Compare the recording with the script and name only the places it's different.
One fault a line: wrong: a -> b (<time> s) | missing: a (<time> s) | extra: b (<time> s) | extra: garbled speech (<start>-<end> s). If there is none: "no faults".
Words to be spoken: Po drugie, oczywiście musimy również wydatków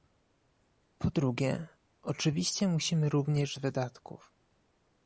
no faults